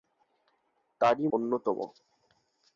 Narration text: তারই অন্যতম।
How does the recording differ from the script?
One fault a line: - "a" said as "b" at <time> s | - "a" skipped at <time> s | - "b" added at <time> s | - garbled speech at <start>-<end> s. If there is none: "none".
none